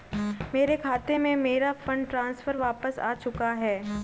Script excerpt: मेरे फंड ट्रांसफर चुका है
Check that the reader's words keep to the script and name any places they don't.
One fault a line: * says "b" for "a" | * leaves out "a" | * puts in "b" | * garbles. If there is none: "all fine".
* puts in "खाते में मेरा"
* puts in "वापस आ"